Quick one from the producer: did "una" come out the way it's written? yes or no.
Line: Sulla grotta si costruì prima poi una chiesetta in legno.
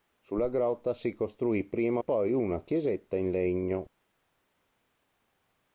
yes